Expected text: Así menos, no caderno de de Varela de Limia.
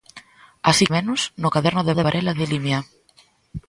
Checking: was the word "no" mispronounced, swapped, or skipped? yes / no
no